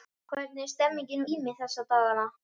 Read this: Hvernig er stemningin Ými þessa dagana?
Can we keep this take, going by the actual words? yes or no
yes